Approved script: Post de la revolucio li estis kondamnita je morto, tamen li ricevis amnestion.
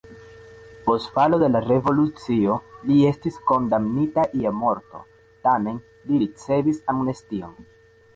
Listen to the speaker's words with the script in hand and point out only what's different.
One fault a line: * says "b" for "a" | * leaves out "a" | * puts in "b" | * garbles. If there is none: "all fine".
* puts in "falo"